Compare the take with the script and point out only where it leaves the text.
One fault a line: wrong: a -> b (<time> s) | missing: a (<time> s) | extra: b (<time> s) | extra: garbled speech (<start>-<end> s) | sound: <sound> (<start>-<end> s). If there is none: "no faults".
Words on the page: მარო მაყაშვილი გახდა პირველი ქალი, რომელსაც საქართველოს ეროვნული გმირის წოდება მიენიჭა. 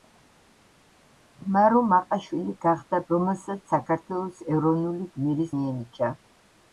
missing: პირველი ქალი (3.0 s)
missing: წოდება (5.5 s)